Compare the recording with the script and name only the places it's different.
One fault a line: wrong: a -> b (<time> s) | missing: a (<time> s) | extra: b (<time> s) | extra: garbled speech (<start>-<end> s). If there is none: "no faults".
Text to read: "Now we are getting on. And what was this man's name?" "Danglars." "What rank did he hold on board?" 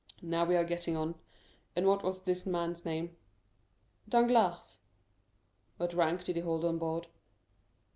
no faults